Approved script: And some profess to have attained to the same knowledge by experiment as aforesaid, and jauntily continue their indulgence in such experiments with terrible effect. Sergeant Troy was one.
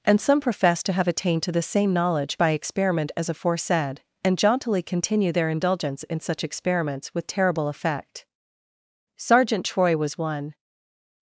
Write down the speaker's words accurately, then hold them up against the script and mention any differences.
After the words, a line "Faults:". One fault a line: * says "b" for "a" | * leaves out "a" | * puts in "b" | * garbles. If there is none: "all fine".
And some profess to have attained to the same knowledge by experiment as aforesaid, and jauntily continue their indulgence in such experiments with terrible effect. Sergeant Troy was one.
Faults:
all fine